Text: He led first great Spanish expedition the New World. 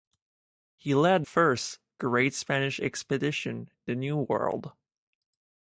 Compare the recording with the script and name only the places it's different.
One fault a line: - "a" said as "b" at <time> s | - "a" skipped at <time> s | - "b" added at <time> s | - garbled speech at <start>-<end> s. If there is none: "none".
none